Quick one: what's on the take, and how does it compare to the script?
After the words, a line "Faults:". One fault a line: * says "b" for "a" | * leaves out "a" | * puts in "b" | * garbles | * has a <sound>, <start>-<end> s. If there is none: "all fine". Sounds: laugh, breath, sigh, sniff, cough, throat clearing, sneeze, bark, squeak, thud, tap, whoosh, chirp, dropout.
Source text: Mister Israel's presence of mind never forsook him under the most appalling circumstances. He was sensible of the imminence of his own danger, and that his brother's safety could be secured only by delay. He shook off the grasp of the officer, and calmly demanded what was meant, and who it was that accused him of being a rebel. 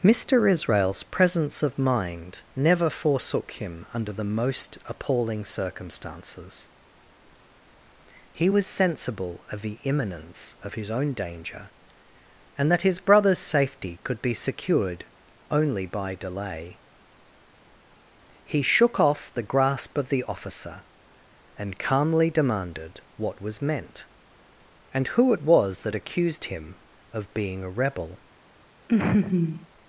Mister Israel's presence of mind never forsook him under the most appalling circumstances. He was sensible of the imminence of his own danger, and that his brother's safety could be secured only by delay. He shook off the grasp of the officer, and calmly demanded what was meant, and who it was that accused him of being a rebel.
Faults:
* has a laugh, 28.9-29.7 s